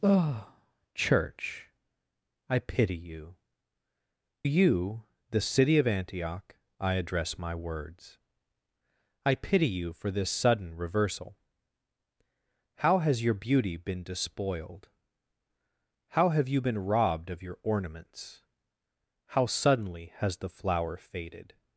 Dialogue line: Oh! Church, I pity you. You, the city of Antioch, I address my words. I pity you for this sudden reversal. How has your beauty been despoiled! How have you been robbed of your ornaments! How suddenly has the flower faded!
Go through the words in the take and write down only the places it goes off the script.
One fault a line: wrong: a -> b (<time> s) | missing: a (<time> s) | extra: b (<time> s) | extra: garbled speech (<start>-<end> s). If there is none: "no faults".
no faults